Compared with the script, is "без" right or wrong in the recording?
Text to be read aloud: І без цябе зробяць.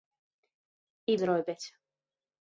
wrong